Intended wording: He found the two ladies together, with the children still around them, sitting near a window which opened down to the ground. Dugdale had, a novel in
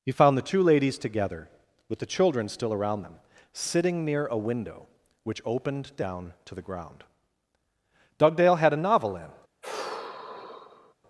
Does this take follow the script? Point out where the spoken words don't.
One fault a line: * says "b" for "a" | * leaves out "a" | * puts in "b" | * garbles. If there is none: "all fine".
all fine